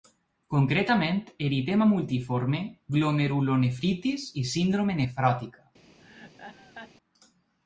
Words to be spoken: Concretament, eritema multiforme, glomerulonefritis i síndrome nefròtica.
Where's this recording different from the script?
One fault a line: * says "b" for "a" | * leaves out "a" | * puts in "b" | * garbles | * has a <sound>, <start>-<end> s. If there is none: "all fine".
* has a laugh, 6.0-6.9 s